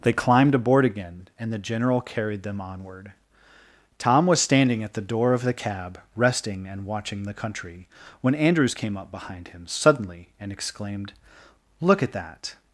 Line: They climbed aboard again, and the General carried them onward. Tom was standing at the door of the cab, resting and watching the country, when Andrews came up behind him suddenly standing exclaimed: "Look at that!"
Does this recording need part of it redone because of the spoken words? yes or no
yes